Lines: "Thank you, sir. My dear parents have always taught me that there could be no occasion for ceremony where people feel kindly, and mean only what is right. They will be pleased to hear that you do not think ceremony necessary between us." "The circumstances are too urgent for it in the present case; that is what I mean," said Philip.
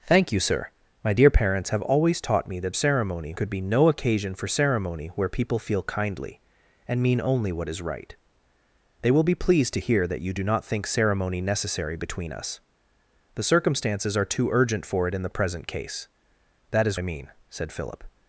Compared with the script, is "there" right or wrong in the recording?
wrong